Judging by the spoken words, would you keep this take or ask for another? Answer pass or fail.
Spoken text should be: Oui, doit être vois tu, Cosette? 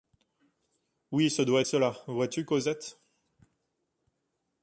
fail